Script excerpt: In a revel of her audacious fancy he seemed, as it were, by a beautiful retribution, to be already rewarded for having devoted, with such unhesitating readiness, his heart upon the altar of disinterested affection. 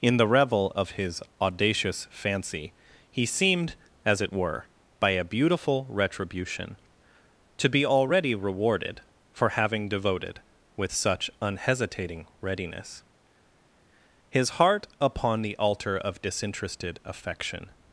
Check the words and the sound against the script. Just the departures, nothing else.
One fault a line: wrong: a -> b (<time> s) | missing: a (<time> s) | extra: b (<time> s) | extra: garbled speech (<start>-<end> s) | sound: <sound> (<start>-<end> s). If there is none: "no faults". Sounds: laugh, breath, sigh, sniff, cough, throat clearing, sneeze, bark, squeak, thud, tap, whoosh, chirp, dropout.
wrong: a -> the (0.2 s)
wrong: her -> his (0.9 s)